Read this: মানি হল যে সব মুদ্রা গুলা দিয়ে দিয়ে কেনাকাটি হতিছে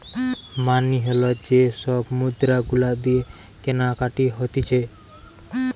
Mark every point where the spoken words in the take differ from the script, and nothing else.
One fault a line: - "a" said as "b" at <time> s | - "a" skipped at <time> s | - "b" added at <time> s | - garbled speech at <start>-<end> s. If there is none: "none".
- "দিয়ে" skipped at 3.2 s